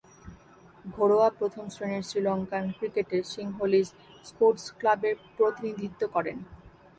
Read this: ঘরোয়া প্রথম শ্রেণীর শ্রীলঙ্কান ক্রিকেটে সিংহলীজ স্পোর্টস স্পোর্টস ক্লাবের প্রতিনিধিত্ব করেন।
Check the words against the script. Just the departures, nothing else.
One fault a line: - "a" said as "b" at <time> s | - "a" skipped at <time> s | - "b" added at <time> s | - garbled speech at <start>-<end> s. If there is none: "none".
- "স্পোর্টস" skipped at 4.7 s